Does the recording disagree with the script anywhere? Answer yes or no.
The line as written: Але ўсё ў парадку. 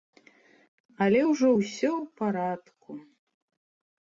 yes